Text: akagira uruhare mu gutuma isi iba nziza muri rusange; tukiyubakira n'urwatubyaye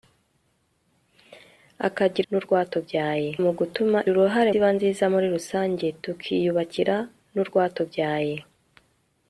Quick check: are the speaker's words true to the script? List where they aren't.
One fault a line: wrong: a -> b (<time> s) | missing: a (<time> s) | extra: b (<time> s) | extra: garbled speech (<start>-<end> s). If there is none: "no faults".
wrong: uruhare -> n'urwatubyaye (2.3 s)
wrong: isi -> uruhare (4.1 s)